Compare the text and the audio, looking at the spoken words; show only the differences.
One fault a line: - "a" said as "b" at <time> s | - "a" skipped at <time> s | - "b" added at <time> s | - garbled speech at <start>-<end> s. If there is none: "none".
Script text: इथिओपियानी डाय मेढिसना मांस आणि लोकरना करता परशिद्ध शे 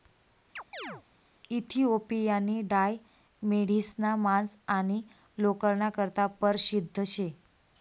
none